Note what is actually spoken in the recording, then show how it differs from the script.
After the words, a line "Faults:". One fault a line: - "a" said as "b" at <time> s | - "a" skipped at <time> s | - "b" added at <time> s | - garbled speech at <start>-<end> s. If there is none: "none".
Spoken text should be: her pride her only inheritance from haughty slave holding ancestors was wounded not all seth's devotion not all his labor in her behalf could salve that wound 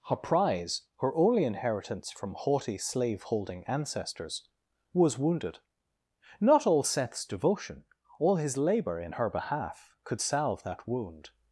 her prize her only inheritance from haughty slave holding ancestors was wounded not all seth's devotion all his labor in her behalf could salve that wound
Faults:
- "pride" said as "prize" at 0.1 s
- "not" skipped at 7.8 s